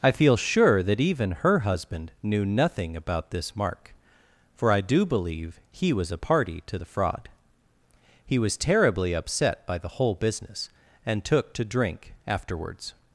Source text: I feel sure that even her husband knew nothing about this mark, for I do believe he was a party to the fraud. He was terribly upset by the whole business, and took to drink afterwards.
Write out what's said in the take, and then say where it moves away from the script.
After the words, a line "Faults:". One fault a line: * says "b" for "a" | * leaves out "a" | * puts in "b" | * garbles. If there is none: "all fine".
I feel sure that even her husband knew nothing about this mark, for I do believe he was a party to the fraud. He was terribly upset by the whole business, and took to drink afterwards.
Faults:
all fine